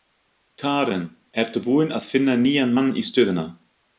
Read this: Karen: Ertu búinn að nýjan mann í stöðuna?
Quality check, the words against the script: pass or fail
fail